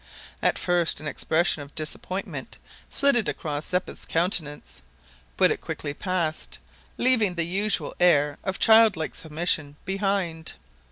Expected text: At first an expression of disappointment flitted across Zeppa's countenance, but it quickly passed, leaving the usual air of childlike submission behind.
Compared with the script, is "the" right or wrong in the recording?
right